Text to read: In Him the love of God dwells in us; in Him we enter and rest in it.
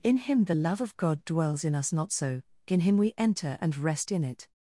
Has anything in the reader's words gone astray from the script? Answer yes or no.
yes